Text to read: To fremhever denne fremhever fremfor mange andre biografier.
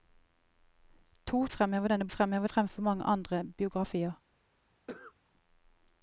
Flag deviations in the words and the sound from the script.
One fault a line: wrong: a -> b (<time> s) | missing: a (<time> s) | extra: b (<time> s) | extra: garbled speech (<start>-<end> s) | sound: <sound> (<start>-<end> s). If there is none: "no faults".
sound: cough (4.9-5.1 s)